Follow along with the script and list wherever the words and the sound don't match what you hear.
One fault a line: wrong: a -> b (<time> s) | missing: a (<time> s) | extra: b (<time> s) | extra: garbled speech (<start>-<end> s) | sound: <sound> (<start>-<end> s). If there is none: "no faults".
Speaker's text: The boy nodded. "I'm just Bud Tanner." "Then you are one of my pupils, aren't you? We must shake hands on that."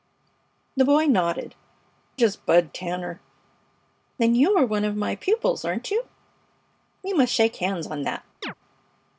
missing: I'm (1.5 s)
sound: chirp (8.4-8.5 s)